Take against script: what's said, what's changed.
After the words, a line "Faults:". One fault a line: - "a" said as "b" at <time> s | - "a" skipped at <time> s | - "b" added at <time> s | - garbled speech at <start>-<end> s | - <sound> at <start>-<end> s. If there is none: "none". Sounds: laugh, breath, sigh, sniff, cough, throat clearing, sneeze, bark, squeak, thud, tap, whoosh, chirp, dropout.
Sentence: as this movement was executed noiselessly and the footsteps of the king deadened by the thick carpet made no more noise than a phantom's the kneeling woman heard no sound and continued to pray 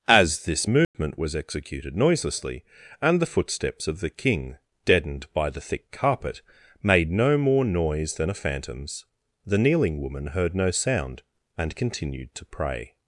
as this movement was executed noiselessly and the footsteps of the king deadened by the thick carpet made no more noise than a phantom's the kneeling woman heard no sound and continued to pray
Faults:
- dropout at 0.8-0.9 s